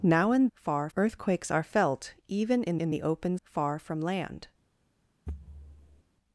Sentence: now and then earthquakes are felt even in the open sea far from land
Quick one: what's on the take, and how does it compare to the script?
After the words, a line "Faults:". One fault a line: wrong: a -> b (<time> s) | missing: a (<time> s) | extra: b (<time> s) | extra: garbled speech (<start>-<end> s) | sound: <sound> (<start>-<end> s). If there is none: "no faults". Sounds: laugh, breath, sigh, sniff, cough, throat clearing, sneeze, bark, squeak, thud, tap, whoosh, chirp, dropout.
now and far earthquakes are felt even in in the open far from land
Faults:
wrong: then -> far (0.5 s)
extra: in (2.7 s)
missing: sea (3.4 s)
sound: thud (5.3-6.0 s)